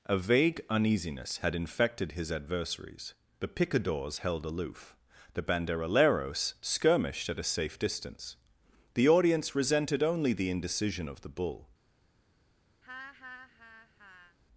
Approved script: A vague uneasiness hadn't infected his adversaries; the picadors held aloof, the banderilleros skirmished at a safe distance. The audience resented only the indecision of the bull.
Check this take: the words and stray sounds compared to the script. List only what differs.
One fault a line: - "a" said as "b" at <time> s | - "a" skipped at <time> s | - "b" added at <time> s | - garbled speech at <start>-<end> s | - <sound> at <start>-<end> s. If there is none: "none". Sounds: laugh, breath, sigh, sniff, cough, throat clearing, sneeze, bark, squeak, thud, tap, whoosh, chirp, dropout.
- "hadn't" said as "had" at 1.4 s
- laugh at 12.8-14.4 s